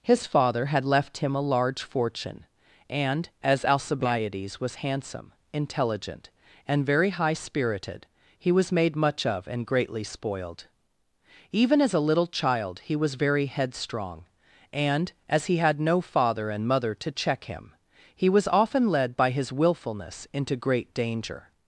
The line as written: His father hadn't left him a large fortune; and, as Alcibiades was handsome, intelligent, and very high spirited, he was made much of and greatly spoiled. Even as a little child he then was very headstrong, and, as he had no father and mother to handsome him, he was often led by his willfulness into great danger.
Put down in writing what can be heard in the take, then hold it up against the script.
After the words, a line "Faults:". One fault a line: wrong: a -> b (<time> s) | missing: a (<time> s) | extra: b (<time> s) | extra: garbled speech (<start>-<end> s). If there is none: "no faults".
His father had left him a large fortune; and, as Alcibiades was handsome, intelligent, and very high spirited, he was made much of and greatly spoiled. Even as a little child he was very headstrong, and, as he had no father and mother to check him, he was often led by his willfulness into great danger.
Faults:
wrong: hadn't -> had (0.7 s)
missing: then (12.9 s)
wrong: handsome -> check (17.1 s)